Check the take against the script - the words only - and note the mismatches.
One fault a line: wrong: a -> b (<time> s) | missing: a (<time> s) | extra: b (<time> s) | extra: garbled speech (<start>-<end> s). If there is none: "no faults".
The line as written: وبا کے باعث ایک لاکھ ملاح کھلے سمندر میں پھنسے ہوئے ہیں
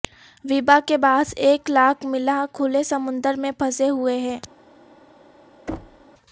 no faults